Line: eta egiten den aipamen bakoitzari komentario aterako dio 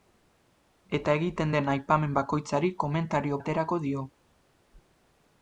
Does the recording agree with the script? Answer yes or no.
yes